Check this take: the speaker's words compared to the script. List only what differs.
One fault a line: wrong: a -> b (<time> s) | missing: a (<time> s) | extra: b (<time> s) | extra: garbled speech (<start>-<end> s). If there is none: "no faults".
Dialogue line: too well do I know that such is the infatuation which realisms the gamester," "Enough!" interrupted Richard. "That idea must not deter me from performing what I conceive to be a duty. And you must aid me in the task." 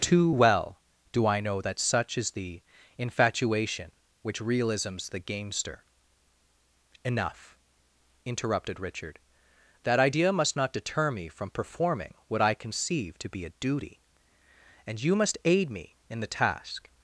no faults